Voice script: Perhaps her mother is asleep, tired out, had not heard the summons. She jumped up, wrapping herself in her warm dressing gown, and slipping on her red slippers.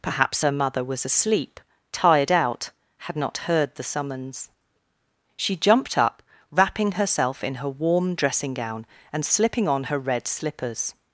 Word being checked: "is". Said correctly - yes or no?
no